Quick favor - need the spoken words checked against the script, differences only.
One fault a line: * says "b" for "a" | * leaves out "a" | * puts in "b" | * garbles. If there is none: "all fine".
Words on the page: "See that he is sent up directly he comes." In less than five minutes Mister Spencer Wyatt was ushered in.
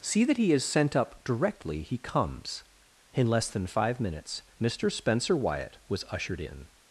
all fine